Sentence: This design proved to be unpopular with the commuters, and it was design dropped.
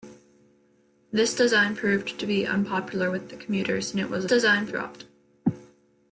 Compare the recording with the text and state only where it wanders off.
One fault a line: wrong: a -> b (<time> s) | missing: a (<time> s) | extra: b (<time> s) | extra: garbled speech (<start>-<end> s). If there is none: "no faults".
no faults